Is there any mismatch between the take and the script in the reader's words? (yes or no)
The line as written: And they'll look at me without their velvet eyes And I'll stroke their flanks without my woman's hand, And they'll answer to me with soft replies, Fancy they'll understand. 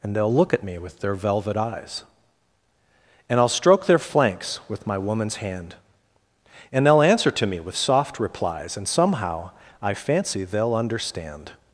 yes